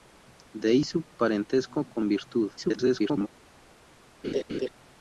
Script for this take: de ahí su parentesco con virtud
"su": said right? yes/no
yes